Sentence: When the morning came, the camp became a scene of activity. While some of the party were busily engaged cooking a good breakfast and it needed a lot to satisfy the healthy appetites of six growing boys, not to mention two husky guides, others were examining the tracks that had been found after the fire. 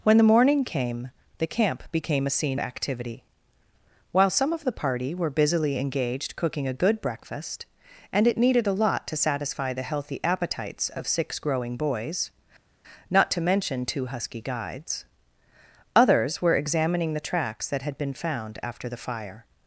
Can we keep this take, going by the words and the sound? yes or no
no